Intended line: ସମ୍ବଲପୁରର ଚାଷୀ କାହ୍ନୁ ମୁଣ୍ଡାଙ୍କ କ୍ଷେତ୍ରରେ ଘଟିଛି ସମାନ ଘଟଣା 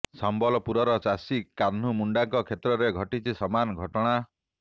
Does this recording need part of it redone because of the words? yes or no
no